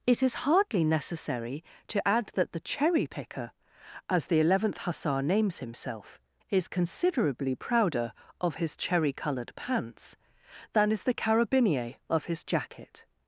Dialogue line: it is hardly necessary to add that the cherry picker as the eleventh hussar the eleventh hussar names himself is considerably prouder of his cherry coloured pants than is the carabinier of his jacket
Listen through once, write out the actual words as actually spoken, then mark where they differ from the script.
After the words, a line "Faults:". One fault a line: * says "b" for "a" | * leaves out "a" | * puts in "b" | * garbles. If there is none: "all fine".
it is hardly necessary to add that the cherry picker as the eleventh hussar names himself is considerably prouder of his cherry coloured pants than is the carabinier of his jacket
Faults:
* leaves out "the eleventh hussar"